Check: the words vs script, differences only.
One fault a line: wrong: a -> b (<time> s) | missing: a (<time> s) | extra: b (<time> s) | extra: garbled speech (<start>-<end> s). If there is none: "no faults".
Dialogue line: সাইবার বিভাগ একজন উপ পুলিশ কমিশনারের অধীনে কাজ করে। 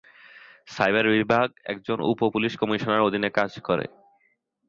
no faults